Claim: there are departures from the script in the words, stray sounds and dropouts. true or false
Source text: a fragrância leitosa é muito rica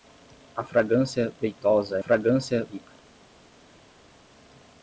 true